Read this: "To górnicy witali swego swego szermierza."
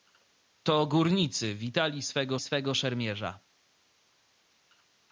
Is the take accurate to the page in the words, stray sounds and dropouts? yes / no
yes